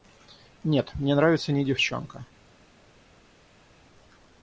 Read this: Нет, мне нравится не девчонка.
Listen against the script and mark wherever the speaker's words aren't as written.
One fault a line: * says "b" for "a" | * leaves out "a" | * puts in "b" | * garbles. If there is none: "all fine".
all fine